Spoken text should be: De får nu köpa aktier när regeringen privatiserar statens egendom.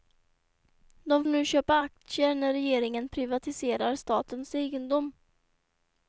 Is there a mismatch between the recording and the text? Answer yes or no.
yes